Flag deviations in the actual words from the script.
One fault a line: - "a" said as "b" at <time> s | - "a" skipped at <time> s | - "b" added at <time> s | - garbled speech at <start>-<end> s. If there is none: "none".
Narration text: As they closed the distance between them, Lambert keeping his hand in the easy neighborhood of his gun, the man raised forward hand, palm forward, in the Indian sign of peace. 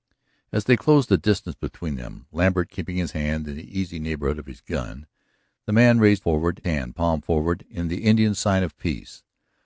none